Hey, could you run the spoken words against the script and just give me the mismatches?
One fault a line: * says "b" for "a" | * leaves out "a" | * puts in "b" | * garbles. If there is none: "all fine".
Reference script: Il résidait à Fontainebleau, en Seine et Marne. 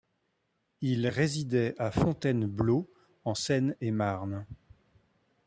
all fine